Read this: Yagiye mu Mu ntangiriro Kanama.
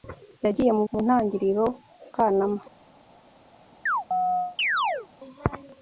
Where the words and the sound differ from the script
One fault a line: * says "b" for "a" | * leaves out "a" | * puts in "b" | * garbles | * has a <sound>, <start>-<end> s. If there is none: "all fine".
* has a chirp, 3.9-5.1 s